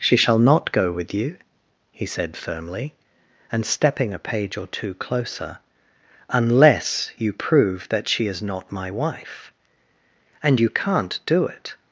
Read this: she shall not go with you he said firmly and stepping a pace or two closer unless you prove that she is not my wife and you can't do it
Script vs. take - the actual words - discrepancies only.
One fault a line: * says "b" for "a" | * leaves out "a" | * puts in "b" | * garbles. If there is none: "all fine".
* says "page" for "pace"